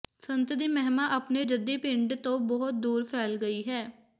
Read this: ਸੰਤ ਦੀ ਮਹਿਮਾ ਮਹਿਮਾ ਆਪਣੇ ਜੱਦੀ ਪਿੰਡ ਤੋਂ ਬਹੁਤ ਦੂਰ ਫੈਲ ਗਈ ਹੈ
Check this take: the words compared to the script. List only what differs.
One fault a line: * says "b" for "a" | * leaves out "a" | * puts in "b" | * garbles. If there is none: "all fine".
* leaves out "ਮਹਿਮਾ"